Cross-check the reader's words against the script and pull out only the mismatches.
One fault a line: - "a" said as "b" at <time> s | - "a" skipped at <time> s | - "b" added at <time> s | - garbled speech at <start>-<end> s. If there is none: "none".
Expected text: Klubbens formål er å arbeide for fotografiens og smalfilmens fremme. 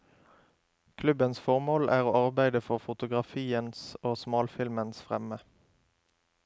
none